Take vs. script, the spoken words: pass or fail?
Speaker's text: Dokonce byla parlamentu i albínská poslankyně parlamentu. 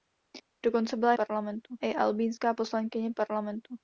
pass